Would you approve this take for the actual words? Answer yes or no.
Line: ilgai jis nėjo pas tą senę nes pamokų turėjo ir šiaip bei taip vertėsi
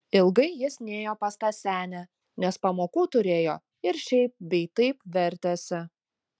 yes